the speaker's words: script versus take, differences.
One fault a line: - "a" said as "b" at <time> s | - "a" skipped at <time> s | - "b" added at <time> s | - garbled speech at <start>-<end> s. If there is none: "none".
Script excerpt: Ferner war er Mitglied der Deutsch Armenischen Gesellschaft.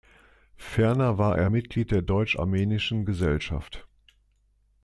none